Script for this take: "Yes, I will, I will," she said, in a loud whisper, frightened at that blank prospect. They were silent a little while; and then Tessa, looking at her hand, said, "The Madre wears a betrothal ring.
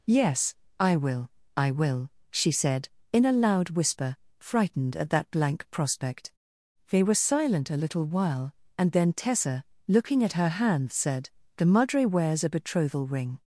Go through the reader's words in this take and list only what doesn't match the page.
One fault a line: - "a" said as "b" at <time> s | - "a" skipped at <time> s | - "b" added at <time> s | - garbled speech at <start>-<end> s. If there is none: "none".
none